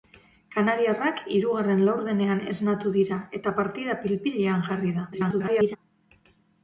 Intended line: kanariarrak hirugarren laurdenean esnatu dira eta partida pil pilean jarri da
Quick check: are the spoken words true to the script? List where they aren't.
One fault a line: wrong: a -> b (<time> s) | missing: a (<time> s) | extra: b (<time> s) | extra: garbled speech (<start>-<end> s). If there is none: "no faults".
extra: garbled speech (5.1-5.8 s)